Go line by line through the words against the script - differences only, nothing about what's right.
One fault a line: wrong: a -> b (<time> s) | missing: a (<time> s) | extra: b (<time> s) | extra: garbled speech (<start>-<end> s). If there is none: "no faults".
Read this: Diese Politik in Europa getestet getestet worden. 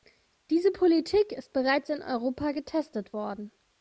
extra: ist bereits (1.3 s)
missing: getestet (3.2 s)